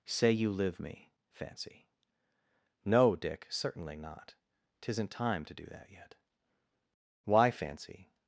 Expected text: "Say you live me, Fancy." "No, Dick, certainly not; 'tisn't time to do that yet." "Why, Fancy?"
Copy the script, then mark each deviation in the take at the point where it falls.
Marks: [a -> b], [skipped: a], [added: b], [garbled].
"Say you live me, Fancy." "No, Dick, certainly not; 'tisn't time to do that yet." "Why, Fancy?"